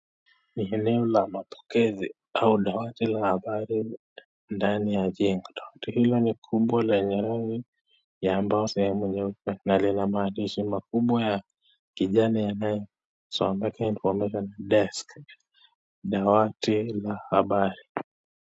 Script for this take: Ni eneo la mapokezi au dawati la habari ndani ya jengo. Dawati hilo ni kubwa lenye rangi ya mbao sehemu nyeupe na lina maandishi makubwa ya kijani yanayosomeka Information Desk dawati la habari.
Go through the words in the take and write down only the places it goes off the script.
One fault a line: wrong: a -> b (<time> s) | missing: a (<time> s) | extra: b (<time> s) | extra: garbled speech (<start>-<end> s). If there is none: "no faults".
no faults